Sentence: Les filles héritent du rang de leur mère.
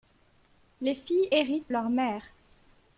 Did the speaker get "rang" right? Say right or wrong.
wrong